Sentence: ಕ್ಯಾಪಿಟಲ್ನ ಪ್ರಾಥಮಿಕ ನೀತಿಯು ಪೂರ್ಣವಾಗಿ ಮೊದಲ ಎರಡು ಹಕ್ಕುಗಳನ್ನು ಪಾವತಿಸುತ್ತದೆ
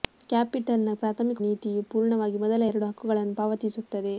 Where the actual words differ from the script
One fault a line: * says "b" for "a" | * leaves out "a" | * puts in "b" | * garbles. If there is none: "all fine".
all fine